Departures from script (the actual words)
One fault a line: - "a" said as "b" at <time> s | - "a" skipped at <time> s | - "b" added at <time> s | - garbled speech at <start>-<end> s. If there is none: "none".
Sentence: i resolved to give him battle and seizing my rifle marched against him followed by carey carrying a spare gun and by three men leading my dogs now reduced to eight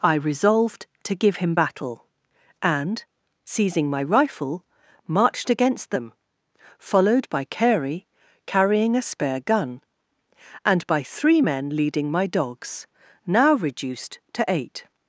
- "him" said as "them" at 5.9 s